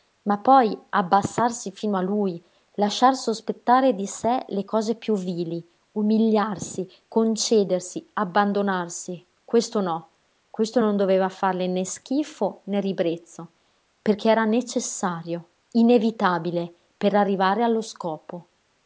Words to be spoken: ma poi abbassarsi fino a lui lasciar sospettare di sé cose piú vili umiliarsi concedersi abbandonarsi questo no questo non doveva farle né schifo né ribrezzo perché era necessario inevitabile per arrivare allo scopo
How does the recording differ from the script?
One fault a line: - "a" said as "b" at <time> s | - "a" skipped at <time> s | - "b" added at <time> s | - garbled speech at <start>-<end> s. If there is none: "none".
- "le" added at 4.5 s